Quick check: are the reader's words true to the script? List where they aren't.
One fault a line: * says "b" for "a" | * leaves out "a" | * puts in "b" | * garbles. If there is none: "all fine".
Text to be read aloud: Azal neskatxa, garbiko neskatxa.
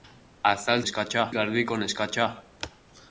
all fine